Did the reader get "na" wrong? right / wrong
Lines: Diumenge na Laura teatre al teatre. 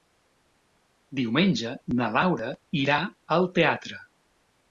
right